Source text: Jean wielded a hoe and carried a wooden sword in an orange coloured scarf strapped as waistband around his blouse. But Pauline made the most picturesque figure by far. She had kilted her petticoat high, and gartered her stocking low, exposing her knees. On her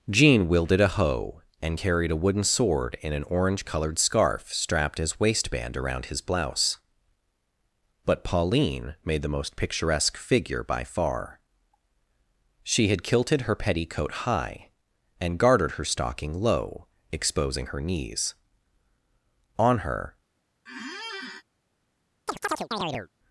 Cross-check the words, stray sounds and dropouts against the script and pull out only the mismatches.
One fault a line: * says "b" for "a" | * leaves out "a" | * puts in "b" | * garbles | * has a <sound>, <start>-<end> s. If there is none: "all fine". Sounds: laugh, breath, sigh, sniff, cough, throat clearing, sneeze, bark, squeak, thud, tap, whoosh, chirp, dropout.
* has a squeak, 20.7-21.4 s
* has a chirp, 22.3-23.1 s